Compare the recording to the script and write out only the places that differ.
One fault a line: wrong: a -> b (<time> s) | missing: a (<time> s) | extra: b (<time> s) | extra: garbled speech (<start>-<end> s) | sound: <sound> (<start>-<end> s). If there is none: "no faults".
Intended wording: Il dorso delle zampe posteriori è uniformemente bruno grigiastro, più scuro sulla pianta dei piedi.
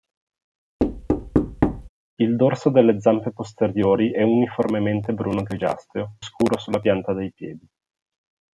sound: thud (0.8-1.9 s)
missing: più (6.2 s)